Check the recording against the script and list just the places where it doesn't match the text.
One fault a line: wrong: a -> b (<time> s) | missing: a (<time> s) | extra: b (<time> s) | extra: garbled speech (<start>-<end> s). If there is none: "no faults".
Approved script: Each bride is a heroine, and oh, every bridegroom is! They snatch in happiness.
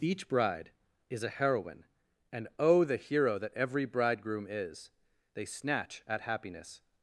extra: the hero that (2.8 s)
wrong: in -> at (6.1 s)